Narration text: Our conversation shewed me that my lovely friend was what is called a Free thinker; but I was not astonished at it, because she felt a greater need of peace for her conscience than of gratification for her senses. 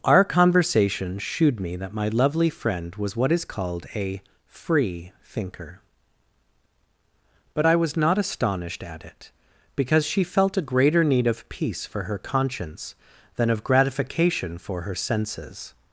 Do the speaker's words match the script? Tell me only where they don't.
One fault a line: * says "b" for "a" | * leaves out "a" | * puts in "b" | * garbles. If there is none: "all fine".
all fine